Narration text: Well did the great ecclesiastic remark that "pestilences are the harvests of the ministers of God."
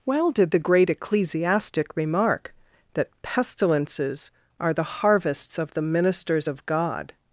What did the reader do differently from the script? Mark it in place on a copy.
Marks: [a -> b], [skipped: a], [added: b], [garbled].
Well did the great ecclesiastic remark that "pestilences are the harvests of the ministers of God."